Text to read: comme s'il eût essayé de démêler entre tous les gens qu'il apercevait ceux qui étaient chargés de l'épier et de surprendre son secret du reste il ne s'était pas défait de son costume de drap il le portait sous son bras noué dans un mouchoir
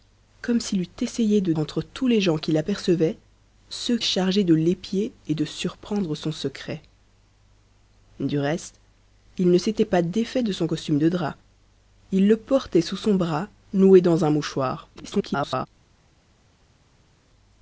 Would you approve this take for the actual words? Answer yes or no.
no